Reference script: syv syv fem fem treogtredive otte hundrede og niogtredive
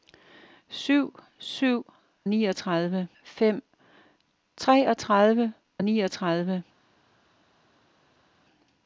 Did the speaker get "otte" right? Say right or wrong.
wrong